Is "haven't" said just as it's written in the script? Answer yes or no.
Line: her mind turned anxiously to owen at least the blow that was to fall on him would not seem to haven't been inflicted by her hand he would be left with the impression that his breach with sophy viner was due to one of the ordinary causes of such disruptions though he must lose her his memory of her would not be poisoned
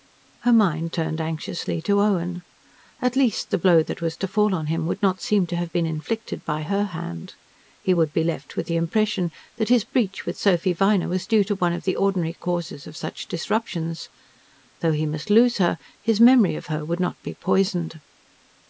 no